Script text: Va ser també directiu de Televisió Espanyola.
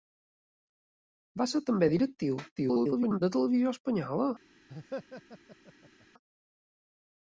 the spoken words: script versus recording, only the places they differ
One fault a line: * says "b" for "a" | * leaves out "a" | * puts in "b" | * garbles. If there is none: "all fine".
* garbles